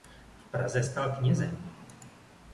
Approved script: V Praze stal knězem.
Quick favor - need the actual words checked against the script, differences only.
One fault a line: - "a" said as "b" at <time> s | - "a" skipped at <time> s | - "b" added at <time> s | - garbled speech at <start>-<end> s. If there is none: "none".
none